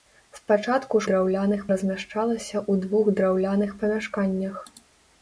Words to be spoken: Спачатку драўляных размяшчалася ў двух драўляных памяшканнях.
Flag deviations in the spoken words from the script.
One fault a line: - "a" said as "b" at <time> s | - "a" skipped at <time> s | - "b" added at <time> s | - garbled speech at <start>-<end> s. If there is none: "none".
none